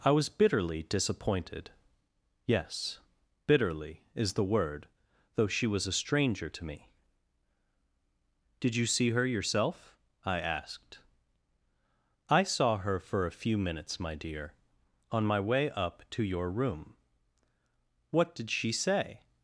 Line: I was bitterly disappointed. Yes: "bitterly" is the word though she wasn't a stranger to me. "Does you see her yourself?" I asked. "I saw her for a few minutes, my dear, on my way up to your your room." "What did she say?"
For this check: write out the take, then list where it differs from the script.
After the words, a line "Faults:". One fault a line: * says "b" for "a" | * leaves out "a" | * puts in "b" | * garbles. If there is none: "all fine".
I was bitterly disappointed. Yes: "bitterly" is the word though she was a stranger to me. "Did you see her yourself?" I asked. "I saw her for a few minutes, my dear, on my way up to your room." "What did she say?"
Faults:
* says "was" for "wasn't"
* says "Did" for "Does"
* leaves out "your"